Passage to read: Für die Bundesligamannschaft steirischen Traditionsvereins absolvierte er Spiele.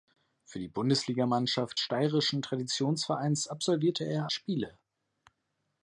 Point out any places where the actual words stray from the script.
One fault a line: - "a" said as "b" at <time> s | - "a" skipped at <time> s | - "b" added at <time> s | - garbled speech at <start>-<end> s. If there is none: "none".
none